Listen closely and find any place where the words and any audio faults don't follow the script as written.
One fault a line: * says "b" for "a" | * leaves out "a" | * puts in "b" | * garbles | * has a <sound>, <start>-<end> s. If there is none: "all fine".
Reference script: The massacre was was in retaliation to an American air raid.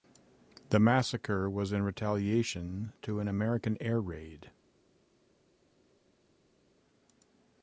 * leaves out "was"